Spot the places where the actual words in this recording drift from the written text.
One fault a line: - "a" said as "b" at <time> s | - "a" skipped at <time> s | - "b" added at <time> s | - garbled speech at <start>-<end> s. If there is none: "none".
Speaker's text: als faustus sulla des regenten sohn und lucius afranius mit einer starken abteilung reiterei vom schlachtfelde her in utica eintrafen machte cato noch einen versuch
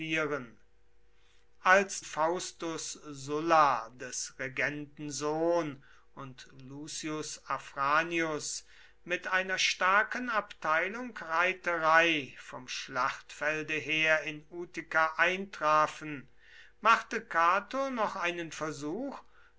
none